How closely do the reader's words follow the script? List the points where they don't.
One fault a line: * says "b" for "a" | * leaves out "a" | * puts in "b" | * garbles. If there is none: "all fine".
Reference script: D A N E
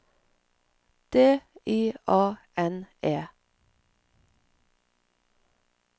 * puts in "I"